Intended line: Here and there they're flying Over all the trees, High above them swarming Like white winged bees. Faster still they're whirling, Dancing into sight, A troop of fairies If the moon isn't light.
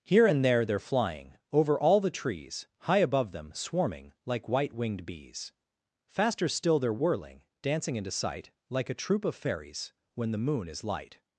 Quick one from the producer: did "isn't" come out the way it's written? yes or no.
no